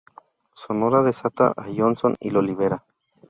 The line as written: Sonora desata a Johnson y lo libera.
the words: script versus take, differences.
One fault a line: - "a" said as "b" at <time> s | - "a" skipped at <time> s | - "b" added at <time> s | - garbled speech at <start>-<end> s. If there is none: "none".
none